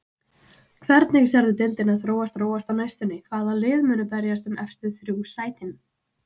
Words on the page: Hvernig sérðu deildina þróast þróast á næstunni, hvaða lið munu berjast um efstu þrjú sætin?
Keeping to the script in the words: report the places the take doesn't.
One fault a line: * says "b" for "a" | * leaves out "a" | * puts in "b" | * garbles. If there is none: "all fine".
all fine